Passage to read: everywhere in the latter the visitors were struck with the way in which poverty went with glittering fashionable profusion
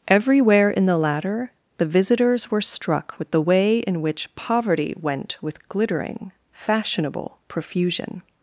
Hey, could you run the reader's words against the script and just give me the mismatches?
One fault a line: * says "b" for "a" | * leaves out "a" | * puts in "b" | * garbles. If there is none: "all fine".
all fine